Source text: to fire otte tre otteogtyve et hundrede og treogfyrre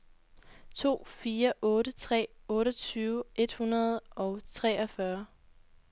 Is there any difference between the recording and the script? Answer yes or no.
no